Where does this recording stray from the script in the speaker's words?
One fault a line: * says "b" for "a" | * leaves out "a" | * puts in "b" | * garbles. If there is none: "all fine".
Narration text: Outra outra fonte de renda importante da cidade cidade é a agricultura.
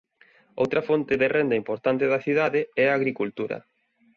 * leaves out "outra"
* leaves out "cidade"